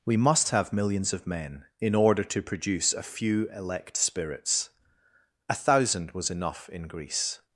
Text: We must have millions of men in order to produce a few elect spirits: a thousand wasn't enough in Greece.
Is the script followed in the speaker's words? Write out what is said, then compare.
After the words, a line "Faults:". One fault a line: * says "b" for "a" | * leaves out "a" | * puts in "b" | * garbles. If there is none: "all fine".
We must have millions of men in order to produce a few elect spirits: a thousand was enough in Greece.
Faults:
* says "was" for "wasn't"